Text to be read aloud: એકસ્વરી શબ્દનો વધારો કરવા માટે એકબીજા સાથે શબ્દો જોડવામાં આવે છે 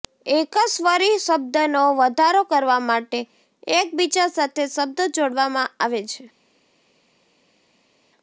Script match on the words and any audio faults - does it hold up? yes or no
yes